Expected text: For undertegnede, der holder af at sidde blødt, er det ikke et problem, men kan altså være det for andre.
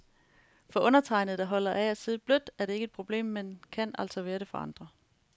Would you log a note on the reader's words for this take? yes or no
no